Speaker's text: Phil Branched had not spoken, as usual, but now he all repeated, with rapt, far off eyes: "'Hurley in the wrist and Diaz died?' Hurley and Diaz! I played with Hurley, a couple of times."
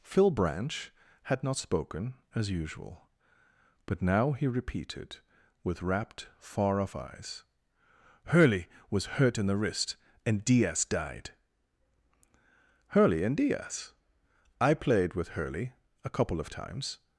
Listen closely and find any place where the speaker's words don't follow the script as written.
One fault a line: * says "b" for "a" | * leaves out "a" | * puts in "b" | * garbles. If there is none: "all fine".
* says "Branch" for "Branched"
* leaves out "all"
* puts in "was hurt"